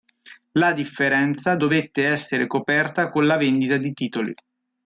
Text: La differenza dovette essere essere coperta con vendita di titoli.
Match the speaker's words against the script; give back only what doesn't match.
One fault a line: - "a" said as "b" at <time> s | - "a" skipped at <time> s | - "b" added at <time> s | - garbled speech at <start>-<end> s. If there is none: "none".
- "essere" skipped at 2.5 s
- "la" added at 3.3 s